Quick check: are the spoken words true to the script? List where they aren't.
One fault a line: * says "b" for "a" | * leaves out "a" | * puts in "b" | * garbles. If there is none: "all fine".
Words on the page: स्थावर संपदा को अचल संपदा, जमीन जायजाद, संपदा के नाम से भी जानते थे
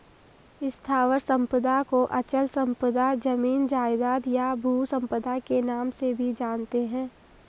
* puts in "या भू"
* says "हैं" for "थे"